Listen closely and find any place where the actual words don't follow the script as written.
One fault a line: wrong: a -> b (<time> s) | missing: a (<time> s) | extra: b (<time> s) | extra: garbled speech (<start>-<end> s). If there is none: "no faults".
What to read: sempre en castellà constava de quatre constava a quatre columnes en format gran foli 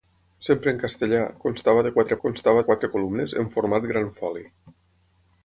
no faults